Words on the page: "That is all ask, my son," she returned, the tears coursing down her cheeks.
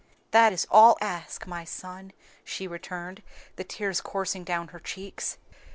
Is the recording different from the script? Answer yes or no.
no